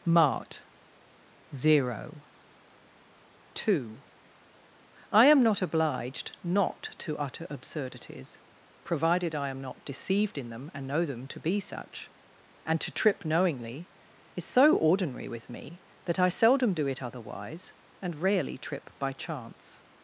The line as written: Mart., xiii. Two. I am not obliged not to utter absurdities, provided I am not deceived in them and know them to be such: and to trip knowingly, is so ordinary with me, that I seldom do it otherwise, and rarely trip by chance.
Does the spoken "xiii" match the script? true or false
false